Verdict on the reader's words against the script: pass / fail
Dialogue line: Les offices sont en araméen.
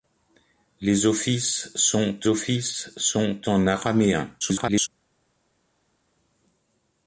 fail